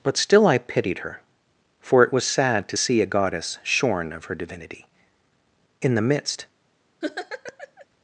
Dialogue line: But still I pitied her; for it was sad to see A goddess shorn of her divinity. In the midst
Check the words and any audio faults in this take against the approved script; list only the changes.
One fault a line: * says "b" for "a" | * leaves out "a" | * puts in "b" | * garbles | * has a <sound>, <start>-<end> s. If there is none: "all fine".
* has a laugh, 7.0-7.9 s